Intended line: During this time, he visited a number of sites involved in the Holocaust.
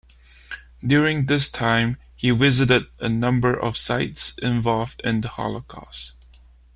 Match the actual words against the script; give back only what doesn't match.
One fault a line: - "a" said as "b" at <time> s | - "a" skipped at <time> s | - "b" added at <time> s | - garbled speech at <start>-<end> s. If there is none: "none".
none